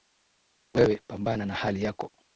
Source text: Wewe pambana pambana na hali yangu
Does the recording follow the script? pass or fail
fail